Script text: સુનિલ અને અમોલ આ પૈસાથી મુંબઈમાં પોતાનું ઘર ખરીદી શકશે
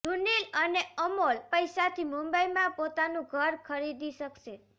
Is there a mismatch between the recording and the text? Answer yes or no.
yes